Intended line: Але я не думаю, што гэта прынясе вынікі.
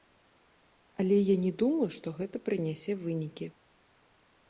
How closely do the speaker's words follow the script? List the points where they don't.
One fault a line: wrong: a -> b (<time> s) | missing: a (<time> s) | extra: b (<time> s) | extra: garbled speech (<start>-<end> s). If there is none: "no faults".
no faults